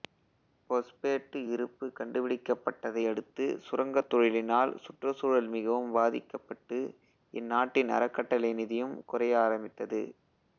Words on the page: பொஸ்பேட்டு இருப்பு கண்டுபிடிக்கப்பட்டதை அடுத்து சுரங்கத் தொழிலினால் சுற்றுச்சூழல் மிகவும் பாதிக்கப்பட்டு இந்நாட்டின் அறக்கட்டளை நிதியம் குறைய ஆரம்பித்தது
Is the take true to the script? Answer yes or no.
yes